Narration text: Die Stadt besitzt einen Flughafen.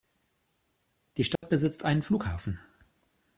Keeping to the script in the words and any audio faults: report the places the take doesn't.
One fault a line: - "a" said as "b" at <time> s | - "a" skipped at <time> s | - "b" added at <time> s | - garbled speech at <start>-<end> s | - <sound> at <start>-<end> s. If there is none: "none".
- dropout at 1.4-1.4 s